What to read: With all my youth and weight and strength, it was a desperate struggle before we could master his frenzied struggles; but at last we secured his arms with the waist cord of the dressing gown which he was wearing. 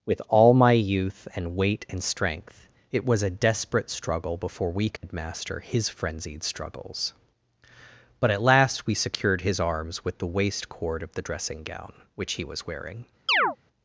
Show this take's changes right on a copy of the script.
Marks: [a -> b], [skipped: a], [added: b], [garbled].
With all my youth and weight and strength, it was a desperate struggle before we could master his frenzied struggles; but at last we secured his arms with the waist cord of the dressing gown which he was wearing.